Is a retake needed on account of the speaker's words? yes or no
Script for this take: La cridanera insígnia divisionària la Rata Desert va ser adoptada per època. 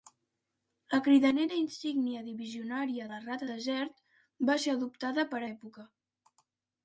no